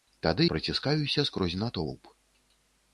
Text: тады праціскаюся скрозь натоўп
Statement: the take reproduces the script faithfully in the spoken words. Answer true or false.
true